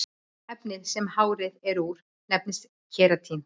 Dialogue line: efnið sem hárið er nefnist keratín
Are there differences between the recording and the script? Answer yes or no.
yes